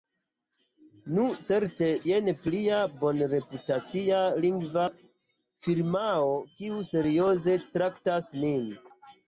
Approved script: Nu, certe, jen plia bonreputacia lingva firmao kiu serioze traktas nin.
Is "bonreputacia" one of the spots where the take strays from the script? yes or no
no